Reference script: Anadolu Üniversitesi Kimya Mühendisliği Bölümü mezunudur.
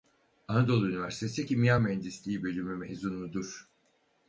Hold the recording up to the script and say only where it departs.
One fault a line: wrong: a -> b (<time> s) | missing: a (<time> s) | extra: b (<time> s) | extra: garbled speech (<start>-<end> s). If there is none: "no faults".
no faults